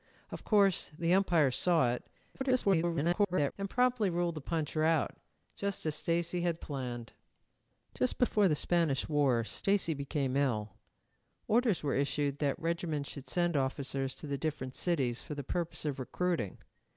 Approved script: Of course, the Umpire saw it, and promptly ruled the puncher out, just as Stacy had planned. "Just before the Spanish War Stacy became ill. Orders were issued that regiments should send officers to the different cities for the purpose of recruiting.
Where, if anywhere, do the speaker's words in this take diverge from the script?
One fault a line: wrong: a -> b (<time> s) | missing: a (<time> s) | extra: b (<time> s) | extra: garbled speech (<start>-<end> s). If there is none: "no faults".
extra: garbled speech (2.3-3.5 s)